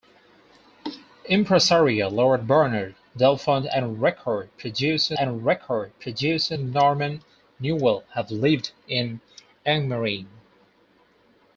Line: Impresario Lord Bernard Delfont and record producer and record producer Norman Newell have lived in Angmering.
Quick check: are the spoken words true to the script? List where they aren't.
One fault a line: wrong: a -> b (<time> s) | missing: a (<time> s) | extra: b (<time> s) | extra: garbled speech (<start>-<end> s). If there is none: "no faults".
no faults